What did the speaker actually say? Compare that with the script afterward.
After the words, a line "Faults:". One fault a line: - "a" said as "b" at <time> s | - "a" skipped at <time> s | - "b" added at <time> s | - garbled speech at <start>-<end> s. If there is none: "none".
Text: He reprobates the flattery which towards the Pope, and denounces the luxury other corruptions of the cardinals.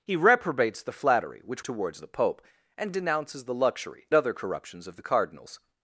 He reprobates the flattery which towards the Pope, and denounces the luxury other corruptions of the cardinals.
Faults:
none